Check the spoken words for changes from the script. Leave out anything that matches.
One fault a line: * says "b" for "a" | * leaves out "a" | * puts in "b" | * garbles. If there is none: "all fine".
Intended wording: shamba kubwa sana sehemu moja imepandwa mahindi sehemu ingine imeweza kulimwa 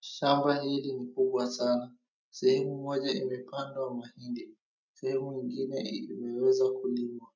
* puts in "hili ni"